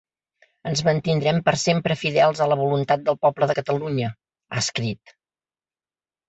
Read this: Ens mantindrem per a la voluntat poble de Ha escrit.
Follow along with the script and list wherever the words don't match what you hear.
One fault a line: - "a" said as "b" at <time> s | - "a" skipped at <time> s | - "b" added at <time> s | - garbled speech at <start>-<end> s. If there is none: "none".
- "sempre fidels" added at 1.6 s
- "del" added at 3.1 s
- "Catalunya" added at 3.6 s